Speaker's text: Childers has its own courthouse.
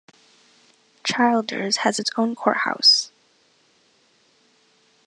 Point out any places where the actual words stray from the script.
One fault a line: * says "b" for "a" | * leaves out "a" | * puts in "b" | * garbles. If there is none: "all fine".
all fine